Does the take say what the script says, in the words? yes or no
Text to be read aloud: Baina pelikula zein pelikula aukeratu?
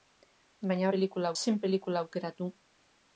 yes